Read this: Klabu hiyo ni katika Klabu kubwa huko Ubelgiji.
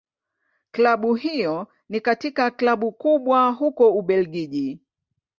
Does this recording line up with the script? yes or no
yes